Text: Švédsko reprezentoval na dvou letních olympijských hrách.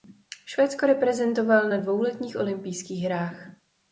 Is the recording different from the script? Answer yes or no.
no